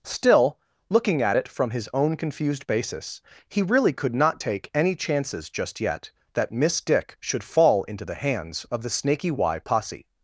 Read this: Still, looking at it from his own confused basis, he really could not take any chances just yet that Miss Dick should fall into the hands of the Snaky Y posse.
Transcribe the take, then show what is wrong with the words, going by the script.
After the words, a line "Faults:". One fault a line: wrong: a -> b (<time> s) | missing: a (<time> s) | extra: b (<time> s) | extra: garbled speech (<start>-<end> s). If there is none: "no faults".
Still, looking at it from his own confused basis, he really could not take any chances just yet that Miss Dick should fall into the hands of the Snaky Y posse.
Faults:
no faults